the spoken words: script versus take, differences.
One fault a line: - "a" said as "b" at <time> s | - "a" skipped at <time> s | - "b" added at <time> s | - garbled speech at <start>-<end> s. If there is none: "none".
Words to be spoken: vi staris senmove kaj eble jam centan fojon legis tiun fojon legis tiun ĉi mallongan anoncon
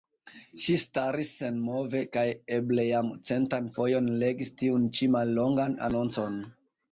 - "vi" said as "ŝi" at 0.6 s
- "fojon legis tiun" skipped at 4.9 s